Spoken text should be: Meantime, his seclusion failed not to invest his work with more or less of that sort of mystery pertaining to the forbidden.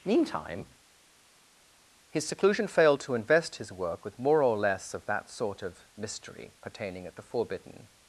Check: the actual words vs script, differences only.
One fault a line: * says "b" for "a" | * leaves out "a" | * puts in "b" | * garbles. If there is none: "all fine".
* leaves out "not"
* says "at" for "to"